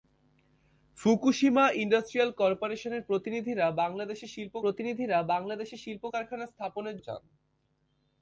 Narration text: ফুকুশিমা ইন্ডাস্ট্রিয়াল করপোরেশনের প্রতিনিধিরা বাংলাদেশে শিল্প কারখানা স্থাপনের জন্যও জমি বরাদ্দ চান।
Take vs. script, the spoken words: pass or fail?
fail